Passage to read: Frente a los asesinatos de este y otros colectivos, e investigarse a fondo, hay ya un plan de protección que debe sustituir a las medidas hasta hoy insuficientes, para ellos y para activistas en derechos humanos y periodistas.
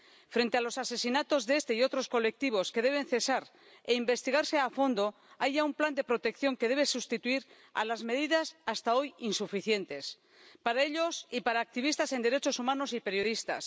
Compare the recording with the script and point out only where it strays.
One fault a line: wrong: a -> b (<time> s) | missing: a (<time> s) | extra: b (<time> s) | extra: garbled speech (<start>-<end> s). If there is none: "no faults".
extra: que deben cesar (2.7 s)